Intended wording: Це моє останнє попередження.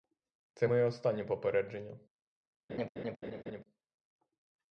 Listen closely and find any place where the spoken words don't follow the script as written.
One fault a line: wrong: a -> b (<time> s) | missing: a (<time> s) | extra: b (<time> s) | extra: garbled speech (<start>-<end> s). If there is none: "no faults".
no faults